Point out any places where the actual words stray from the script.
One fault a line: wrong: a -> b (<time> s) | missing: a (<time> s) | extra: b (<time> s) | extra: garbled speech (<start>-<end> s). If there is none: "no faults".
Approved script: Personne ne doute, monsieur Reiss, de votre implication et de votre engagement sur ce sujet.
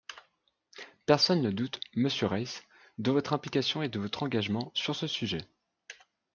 no faults